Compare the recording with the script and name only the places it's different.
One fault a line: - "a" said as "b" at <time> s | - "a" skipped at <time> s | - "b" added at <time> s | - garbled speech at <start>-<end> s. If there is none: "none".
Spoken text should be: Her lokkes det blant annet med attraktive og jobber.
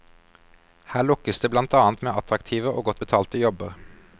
- "godt betalte" added at 2.9 s